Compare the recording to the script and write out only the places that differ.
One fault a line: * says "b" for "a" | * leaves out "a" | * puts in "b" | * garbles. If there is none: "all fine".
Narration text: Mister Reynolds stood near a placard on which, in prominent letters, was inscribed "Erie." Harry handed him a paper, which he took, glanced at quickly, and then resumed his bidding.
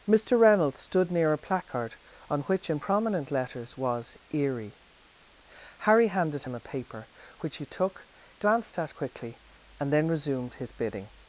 * leaves out "inscribed"